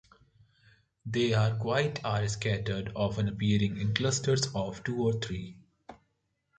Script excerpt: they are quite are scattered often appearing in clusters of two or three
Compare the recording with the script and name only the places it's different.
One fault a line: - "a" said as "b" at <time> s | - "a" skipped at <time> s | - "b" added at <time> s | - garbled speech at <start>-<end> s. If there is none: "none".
none